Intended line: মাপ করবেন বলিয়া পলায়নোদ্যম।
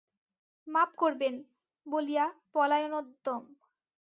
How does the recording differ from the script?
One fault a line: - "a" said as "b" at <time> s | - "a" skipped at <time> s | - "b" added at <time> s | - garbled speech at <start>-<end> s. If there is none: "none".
none